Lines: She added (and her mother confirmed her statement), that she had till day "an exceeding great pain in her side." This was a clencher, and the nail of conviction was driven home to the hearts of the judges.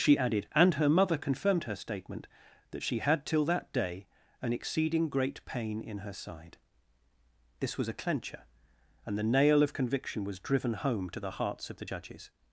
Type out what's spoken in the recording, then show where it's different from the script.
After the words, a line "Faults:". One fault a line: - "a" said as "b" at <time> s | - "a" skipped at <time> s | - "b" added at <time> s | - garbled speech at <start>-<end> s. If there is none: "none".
She added (and her mother confirmed her statement), that she had till that day "an exceeding great pain in her side." This was a clencher, and the nail of conviction was driven home to the hearts of the judges.
Faults:
- "that" added at 3.5 s